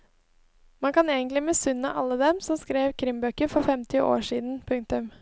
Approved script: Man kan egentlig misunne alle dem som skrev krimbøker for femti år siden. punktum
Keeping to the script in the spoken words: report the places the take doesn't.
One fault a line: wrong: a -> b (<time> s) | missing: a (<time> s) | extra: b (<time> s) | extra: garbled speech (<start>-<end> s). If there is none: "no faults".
no faults